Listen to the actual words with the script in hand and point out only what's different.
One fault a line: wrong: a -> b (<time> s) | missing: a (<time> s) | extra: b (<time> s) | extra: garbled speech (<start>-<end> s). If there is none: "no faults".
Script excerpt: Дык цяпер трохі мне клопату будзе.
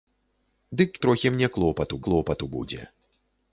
missing: цяпер (0.9 s)
extra: клопату (2.1 s)